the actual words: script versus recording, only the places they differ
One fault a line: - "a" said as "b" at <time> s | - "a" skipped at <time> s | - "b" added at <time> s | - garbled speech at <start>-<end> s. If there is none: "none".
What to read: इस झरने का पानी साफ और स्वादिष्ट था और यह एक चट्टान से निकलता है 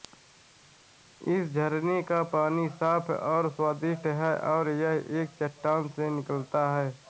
- "था" said as "है" at 4.2 s